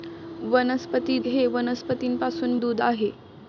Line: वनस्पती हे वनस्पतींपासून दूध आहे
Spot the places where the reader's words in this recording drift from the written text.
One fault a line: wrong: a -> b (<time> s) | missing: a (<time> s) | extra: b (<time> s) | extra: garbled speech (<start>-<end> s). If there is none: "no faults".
no faults